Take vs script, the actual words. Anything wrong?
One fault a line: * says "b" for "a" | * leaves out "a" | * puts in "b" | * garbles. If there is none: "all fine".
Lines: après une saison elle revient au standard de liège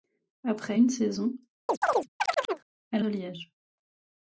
* leaves out "revient au standard"